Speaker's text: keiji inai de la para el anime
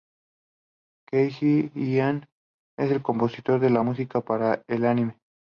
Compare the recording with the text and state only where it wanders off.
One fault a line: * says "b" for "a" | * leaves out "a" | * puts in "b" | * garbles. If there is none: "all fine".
* puts in "es el compositor"
* puts in "música"